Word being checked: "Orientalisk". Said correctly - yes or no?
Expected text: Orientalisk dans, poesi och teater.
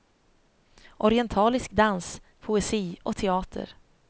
yes